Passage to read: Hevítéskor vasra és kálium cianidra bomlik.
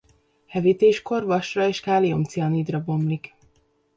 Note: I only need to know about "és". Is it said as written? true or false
true